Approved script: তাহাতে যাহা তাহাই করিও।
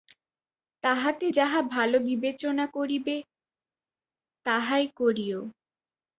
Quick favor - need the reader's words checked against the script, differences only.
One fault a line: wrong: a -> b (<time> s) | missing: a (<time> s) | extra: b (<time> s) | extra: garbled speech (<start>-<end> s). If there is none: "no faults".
extra: ভাল বিবেচনা করিবে (1.7 s)